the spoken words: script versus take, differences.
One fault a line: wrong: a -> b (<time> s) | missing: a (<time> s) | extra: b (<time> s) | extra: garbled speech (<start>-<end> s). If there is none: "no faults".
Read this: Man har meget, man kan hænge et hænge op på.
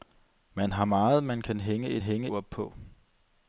no faults